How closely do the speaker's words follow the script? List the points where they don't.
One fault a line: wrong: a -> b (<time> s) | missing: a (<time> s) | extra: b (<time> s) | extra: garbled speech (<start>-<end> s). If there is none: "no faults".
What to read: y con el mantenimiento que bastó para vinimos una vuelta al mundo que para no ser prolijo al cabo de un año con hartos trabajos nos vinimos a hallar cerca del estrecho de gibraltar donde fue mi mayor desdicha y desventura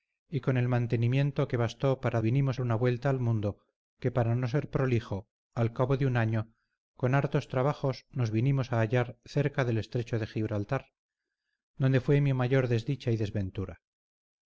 no faults